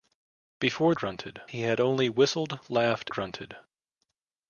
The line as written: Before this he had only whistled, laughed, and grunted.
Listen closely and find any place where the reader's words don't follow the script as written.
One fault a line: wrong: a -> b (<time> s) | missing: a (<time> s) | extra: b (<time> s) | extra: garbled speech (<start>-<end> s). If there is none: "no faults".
wrong: this -> grunted (0.9 s)
missing: and (3.1 s)